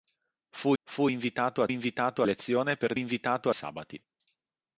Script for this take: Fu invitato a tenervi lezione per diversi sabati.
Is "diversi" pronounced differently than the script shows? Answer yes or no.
yes